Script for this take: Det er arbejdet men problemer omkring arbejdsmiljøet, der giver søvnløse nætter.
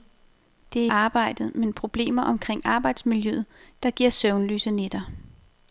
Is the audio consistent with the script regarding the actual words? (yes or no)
yes